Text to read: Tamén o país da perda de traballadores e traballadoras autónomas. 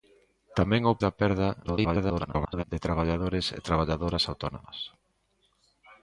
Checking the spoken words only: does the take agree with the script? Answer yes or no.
no